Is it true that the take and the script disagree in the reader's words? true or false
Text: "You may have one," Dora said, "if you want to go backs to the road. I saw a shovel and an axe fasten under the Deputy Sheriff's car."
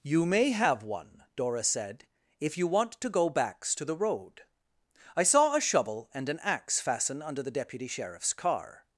false